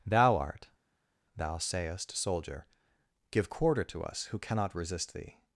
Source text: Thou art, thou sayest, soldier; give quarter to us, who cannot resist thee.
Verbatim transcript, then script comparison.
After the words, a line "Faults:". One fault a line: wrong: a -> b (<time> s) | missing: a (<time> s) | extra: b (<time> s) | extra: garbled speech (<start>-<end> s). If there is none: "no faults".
Thou art, thou sayest, soldier; give quarter to us, who cannot resist thee.
Faults:
no faults